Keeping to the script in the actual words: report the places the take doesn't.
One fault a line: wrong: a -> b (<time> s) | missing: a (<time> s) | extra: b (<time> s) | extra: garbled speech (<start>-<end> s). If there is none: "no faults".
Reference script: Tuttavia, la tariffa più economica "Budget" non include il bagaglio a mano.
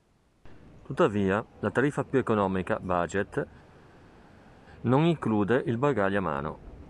no faults